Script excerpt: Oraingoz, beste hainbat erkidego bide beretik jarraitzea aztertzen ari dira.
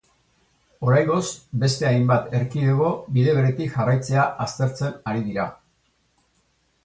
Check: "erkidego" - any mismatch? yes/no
no